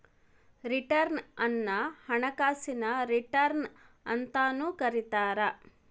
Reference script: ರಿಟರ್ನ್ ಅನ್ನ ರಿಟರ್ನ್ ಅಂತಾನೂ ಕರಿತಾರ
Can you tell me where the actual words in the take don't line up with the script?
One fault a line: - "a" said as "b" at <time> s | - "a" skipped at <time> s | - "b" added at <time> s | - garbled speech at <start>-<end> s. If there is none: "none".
- "ಹಣಕಾಸಿನ" added at 2.0 s